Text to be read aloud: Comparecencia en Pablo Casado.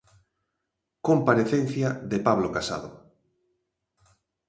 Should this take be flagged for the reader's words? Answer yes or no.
yes